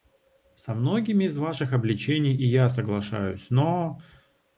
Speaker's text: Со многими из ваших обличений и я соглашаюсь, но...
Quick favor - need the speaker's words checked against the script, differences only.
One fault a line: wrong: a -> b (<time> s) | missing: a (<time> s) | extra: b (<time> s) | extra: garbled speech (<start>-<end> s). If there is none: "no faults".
no faults